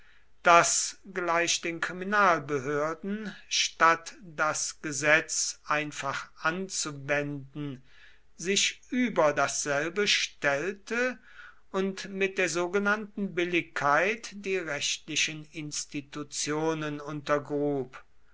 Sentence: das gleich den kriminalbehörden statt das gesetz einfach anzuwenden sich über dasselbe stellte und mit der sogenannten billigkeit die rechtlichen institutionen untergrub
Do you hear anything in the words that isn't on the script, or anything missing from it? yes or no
no